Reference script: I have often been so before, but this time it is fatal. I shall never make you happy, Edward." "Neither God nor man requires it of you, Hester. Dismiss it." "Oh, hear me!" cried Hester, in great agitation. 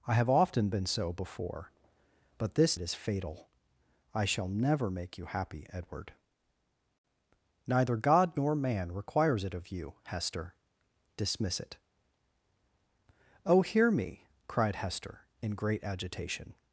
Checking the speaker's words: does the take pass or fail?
fail